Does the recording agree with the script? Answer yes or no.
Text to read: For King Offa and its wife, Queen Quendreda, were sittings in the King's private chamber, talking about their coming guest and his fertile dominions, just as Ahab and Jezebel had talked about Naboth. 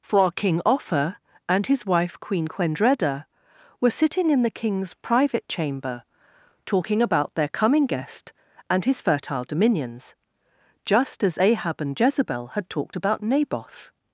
no